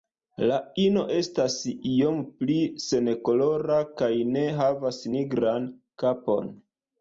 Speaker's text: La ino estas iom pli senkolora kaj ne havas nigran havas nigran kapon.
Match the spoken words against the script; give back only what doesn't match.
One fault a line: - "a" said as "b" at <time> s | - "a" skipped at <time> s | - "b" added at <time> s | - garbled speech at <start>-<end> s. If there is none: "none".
- "havas nigran" skipped at 5.7 s